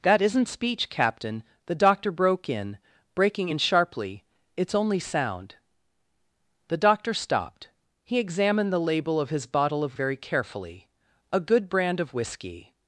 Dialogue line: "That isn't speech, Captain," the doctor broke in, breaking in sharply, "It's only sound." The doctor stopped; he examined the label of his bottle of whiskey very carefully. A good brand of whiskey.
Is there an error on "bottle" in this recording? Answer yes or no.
no